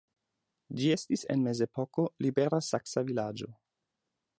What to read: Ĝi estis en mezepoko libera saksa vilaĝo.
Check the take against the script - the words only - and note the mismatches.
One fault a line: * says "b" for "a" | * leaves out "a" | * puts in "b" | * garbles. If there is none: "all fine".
all fine